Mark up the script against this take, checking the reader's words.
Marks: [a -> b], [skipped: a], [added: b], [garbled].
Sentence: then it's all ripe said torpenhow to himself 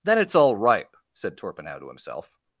then it's all ripe said torpenhow to himself